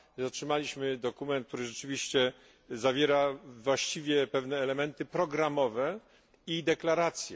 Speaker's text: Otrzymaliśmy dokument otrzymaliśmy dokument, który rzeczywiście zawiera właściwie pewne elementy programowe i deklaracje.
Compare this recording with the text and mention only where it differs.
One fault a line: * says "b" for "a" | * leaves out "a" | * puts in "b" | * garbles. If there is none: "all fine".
* leaves out "otrzymaliśmy dokument"